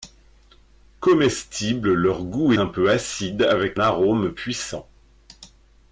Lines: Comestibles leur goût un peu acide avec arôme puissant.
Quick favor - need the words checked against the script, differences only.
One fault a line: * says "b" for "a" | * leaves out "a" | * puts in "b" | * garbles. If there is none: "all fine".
all fine